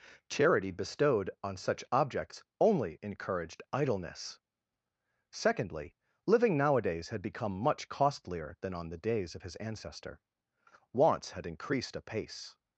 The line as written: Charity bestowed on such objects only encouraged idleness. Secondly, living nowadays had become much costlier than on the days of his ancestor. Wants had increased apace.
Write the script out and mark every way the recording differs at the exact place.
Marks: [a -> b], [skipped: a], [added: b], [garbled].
Charity bestowed on such objects only encouraged idleness. Secondly, living nowadays had become much costlier than on the days of his ancestor. Wants had increased apace.